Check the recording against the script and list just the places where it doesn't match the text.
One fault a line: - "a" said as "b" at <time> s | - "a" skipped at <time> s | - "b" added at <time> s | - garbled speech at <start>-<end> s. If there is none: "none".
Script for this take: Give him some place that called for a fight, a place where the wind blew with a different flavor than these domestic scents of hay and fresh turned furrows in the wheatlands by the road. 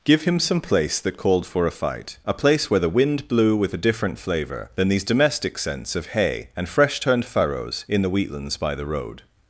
none